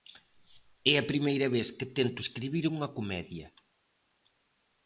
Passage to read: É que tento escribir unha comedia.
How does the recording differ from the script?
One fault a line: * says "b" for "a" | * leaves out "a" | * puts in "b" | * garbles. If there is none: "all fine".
* puts in "a primeira vez"